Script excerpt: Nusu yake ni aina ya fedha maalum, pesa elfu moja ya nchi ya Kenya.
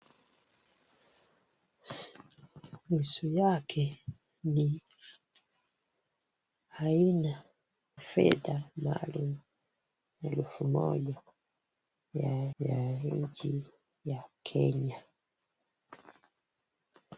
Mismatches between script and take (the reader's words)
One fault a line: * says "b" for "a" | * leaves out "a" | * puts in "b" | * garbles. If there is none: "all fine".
* leaves out "ya"
* leaves out "pesa"
* puts in "ya"